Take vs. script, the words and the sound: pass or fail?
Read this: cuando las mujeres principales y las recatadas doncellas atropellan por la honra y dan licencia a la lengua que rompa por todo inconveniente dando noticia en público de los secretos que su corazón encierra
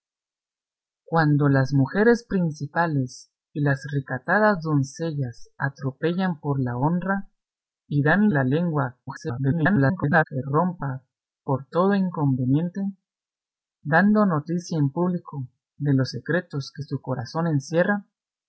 fail